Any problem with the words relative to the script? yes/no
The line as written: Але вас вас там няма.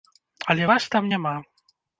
yes